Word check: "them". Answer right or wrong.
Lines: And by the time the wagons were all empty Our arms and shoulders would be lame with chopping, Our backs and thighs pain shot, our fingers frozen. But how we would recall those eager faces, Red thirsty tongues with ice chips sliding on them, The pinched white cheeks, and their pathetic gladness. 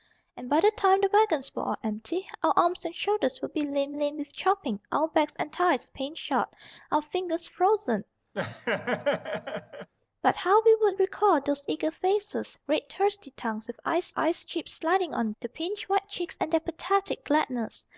wrong